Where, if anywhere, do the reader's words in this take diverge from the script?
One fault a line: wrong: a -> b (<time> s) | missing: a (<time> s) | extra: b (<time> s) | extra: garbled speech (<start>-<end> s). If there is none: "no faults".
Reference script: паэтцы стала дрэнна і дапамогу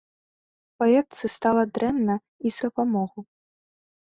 no faults